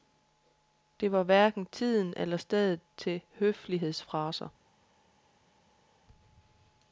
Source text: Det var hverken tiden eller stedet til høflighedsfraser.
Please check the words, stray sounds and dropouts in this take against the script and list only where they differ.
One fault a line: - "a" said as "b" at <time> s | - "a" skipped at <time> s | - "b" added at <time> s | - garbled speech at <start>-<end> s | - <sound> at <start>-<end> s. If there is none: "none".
none